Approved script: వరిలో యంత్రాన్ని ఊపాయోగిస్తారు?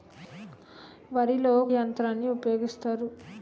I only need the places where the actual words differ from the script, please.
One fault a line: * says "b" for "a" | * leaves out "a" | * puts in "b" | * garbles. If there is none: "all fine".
all fine